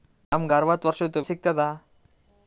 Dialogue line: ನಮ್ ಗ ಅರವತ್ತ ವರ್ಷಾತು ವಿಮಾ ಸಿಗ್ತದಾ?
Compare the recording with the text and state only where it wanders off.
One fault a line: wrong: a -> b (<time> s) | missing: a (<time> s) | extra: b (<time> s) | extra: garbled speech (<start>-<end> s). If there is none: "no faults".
missing: ವಿಮಾ (1.2 s)